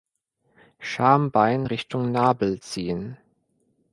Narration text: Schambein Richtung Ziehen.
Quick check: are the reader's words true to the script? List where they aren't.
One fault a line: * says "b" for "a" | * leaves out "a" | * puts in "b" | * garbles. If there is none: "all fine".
* puts in "Nabel"